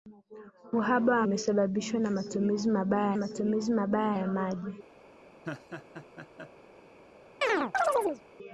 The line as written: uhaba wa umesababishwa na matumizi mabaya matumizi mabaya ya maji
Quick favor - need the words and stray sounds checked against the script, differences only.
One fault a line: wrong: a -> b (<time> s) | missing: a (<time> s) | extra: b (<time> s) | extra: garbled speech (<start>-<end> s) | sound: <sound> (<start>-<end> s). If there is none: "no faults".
sound: laugh (5.4-6.5 s)
sound: chirp (7.4-8.2 s)